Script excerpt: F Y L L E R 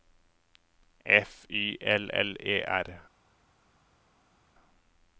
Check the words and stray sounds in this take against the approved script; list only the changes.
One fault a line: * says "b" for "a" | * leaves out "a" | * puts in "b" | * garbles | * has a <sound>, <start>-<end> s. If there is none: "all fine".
all fine